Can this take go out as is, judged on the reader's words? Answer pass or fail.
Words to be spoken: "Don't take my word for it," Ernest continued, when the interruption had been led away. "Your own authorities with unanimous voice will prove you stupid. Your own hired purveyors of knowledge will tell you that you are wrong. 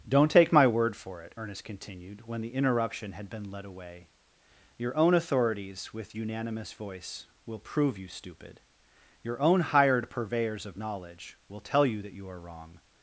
pass